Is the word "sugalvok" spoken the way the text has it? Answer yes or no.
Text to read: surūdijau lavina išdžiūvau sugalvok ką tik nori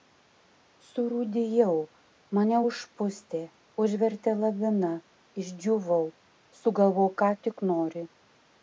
yes